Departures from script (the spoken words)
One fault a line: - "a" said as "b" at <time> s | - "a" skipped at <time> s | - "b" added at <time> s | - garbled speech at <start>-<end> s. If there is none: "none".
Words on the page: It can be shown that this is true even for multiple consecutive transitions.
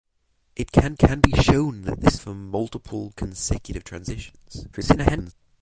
- "can" added at 1.0 s
- "is true even" skipped at 2.2 s
- garbled speech at 4.7-5.3 s